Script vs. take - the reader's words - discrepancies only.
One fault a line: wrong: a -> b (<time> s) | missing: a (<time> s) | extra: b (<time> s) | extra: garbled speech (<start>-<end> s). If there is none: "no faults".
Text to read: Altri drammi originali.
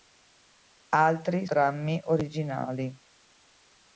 no faults